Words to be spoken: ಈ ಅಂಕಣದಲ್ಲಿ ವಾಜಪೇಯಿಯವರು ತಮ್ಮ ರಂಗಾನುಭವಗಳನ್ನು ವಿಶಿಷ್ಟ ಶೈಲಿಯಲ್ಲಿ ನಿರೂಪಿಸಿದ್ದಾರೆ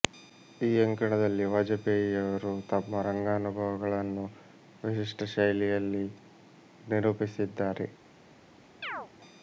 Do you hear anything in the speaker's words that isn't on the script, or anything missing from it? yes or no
no